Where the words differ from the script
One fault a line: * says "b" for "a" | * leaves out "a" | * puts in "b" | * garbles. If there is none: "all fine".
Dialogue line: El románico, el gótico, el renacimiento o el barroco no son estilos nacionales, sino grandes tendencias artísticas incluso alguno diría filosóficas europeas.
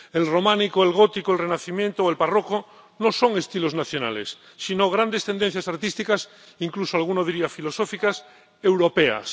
all fine